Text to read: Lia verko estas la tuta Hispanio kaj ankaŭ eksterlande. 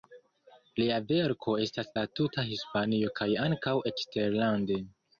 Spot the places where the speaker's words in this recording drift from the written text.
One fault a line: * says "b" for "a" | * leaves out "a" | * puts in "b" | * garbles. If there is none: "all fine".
all fine